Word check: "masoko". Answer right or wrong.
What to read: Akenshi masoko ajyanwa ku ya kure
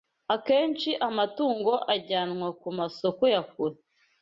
wrong